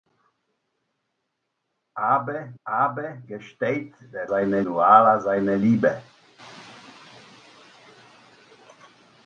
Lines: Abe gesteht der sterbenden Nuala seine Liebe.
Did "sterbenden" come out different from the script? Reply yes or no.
yes